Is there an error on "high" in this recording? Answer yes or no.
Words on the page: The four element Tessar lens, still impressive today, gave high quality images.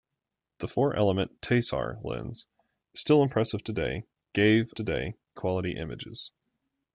yes